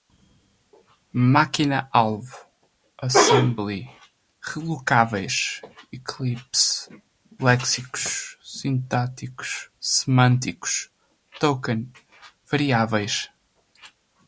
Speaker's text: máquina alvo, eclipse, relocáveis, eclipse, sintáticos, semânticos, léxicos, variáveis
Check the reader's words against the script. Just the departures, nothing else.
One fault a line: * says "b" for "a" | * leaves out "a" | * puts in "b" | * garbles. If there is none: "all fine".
* says "assembly" for "eclipse"
* puts in "léxicos"
* says "token" for "léxicos"